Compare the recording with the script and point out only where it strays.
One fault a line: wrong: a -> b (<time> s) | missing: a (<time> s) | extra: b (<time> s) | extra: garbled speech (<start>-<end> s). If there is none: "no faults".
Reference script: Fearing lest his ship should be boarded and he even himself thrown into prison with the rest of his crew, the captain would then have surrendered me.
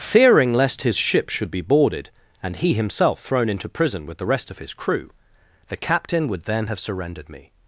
missing: even (2.7 s)